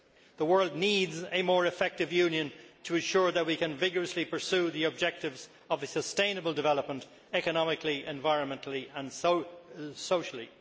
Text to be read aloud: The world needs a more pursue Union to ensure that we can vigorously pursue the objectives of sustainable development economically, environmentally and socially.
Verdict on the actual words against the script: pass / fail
fail